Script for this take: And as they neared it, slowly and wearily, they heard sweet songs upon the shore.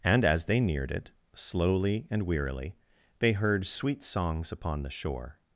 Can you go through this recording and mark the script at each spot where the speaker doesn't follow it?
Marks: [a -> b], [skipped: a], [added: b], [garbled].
And as they neared it, slowly and wearily, they heard sweet songs upon the shore.